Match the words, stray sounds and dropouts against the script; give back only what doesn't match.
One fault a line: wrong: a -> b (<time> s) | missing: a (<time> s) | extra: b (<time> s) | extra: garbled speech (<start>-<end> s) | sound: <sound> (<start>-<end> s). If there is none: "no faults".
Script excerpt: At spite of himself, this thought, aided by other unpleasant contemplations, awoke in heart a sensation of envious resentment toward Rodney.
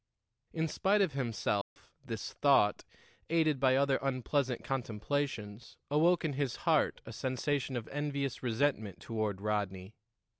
wrong: At -> In (0.5 s)
sound: dropout (1.6-1.8 s)
extra: his (6.3 s)